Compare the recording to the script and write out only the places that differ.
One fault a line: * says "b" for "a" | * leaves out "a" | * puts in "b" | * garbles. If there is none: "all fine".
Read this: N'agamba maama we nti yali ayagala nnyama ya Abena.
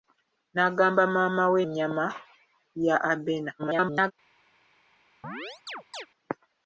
* leaves out "nti yali ayagala"
* garbles